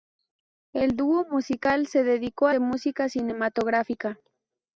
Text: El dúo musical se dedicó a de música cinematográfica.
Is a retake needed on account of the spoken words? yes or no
no